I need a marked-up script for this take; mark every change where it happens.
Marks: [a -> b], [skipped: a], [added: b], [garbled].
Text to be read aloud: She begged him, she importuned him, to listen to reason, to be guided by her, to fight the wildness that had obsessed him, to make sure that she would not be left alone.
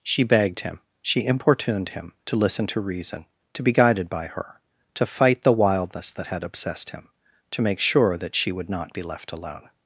She begged him, she importuned him, to listen to reason, to be guided by her, to fight the wildness that had obsessed him, to make sure that she would not be left alone.